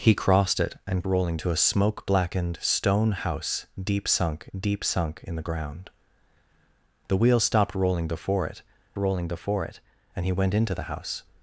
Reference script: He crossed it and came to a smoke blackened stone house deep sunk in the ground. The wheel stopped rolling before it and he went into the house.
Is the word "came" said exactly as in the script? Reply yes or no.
no